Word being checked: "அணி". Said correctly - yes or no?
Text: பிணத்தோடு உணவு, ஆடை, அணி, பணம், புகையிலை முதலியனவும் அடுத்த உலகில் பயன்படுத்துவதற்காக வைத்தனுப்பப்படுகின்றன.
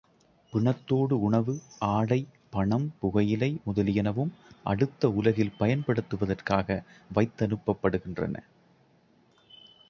no